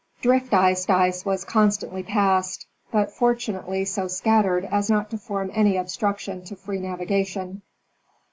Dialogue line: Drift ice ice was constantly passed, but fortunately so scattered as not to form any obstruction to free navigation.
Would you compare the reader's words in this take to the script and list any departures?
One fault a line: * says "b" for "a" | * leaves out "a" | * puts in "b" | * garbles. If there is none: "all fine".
all fine